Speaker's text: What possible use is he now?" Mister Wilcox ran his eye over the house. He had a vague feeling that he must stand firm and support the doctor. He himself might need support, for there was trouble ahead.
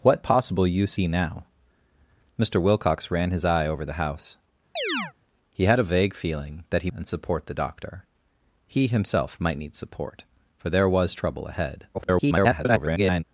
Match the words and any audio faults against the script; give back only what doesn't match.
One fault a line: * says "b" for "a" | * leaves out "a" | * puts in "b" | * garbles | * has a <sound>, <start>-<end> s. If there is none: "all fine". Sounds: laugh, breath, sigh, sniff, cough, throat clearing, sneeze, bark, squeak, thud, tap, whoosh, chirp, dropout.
* leaves out "is"
* has a chirp, 4.8-5.1 s
* leaves out "must stand firm"
* garbles